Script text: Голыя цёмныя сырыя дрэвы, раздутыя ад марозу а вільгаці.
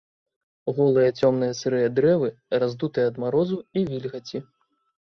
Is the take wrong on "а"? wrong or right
wrong